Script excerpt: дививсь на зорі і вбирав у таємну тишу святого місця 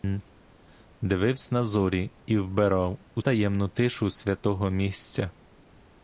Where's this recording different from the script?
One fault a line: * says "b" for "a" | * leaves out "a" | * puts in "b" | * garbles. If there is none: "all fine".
all fine